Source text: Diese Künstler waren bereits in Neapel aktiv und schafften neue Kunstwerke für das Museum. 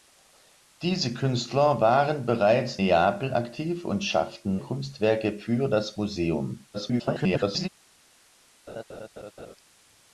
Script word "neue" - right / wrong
wrong